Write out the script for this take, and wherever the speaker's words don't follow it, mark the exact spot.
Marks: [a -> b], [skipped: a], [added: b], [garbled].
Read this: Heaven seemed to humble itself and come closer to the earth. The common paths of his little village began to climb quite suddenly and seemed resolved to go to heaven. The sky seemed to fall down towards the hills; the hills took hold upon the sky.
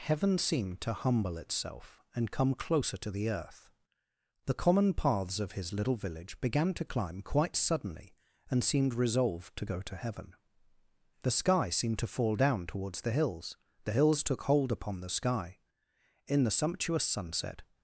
Heaven seemed to humble itself and come closer to the earth. The common paths of his little village began to climb quite suddenly and seemed resolved to go to heaven. The sky seemed to fall down towards the hills; the hills took hold upon the sky. [added: In the sumptuous sunset]